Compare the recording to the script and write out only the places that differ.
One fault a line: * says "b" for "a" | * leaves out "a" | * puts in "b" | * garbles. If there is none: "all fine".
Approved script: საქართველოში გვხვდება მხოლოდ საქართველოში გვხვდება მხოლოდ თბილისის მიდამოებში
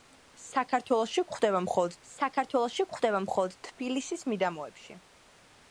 all fine